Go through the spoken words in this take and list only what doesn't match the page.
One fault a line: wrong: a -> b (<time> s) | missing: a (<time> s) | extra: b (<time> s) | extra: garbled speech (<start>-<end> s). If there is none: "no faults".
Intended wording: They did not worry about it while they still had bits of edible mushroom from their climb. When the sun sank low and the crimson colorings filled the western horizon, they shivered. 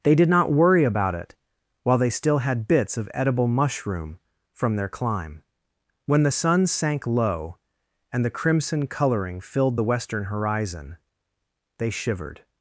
wrong: colorings -> coloring (8.9 s)